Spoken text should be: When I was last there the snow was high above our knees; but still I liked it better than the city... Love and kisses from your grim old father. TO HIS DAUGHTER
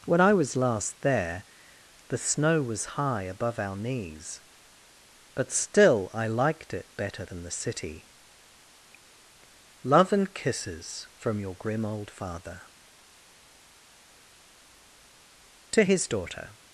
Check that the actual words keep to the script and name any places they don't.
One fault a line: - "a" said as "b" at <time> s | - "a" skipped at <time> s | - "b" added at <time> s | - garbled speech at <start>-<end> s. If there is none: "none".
none